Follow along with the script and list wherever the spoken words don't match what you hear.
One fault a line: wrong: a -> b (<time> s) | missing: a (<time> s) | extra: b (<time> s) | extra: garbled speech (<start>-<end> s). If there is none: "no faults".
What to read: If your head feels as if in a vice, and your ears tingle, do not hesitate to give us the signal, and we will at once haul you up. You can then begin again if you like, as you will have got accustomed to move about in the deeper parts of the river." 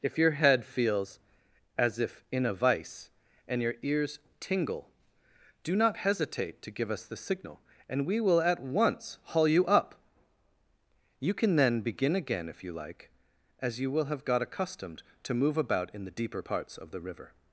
no faults